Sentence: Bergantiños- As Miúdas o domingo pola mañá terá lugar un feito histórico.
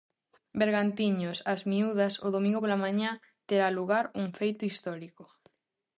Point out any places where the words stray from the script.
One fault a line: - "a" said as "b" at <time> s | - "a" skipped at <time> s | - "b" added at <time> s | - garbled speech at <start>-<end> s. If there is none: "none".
none